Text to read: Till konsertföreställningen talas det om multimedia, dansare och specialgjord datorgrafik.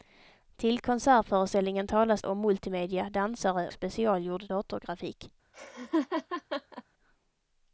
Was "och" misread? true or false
true